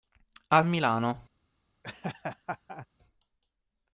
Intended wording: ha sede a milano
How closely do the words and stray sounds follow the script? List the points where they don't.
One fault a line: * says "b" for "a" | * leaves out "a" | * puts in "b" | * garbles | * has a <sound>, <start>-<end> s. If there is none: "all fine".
* leaves out "sede a"
* has a laugh, 1.8-2.9 s